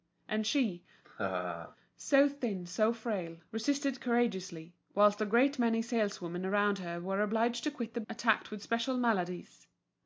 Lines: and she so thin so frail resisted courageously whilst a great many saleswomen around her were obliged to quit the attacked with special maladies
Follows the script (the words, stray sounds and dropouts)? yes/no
no